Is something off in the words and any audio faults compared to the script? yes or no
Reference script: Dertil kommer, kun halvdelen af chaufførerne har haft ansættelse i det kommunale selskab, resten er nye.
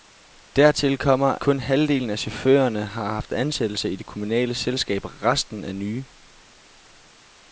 no